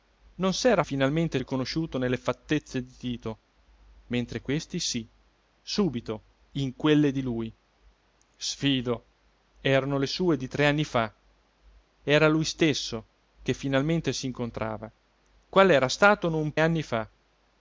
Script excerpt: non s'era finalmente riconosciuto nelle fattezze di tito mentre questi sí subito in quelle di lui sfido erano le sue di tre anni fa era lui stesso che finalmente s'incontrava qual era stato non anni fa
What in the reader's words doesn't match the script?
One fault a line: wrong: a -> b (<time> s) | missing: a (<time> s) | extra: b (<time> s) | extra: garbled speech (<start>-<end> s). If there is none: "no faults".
no faults